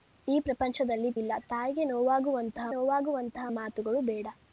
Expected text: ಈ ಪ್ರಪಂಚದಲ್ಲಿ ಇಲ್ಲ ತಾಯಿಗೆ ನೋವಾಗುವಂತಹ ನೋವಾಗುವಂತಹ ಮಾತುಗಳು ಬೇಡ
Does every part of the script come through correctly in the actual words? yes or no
yes